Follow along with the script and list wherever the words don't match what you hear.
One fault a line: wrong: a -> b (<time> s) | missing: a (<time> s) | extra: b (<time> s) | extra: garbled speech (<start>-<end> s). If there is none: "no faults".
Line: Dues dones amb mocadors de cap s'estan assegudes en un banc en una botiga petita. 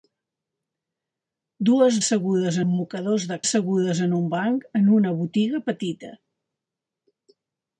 wrong: dones -> assegudes (2.0 s)
missing: cap s'estan (3.4 s)